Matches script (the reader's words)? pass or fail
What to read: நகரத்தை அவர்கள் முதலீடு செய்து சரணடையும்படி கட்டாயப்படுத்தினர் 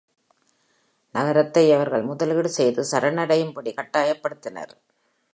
pass